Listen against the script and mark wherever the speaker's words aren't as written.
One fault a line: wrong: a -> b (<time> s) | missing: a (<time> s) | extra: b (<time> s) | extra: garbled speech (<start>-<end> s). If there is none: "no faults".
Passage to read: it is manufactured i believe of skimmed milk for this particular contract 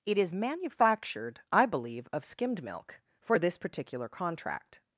no faults